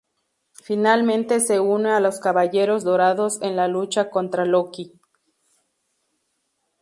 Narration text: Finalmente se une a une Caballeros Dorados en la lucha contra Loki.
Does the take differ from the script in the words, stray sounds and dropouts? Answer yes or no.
yes